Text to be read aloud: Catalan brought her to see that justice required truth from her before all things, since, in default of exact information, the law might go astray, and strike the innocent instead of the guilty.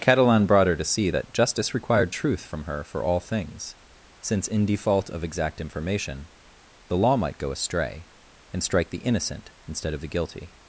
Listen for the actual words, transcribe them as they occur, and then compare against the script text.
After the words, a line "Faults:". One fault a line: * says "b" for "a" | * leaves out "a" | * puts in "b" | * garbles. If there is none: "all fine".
Catalan brought her to see that justice required truth from her for all things, since, in default of exact information, the law might go astray, and strike the innocent instead of the guilty.
Faults:
* says "for" for "before"